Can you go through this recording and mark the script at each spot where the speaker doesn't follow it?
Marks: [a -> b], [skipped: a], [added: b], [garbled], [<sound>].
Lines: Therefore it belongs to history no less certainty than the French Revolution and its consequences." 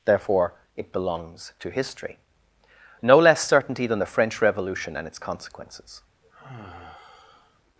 Therefore it belongs to history no less certainty than the French Revolution and its consequences." [sigh]